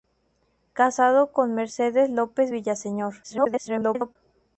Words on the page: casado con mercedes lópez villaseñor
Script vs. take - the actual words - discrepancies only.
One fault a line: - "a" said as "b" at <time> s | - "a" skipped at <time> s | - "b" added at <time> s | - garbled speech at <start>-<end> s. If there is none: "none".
- garbled speech at 3.2-4.2 s